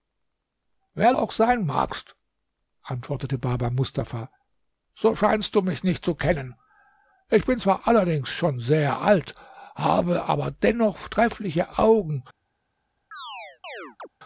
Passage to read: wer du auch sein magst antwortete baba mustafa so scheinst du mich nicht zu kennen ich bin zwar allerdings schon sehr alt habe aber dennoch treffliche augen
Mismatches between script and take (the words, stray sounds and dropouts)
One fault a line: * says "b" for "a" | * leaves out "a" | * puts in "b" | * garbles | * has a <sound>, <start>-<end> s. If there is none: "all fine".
* leaves out "du"
* has a chirp, 13.1-14.1 s